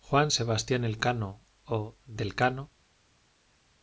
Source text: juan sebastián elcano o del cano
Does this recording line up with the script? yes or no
yes